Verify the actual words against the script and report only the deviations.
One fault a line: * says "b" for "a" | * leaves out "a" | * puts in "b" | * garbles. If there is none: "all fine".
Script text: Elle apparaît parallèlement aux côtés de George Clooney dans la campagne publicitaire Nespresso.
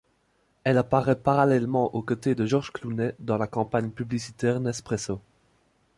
all fine